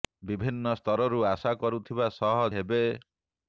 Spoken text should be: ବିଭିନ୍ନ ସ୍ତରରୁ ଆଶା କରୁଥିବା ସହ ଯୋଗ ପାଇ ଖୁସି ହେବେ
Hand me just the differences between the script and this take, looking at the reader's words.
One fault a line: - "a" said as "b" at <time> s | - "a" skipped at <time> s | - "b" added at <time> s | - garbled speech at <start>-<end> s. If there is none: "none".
- "ଯୋଗ ପାଇ ଖୁସି" skipped at 2.4 s